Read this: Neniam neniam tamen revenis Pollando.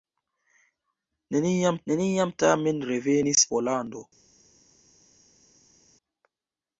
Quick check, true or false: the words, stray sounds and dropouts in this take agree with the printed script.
true